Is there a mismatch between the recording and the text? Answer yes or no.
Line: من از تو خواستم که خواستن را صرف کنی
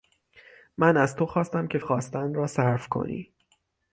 no